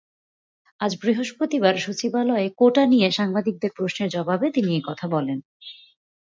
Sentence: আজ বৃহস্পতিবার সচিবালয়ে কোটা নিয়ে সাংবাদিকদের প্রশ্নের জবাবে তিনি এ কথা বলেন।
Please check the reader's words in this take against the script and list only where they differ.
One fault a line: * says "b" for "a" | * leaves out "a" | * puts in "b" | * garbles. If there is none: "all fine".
all fine